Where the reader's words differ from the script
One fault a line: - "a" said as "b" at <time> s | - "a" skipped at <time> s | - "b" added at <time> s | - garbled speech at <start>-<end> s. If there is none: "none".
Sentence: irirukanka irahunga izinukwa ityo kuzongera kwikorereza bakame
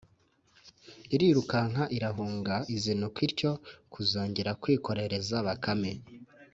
none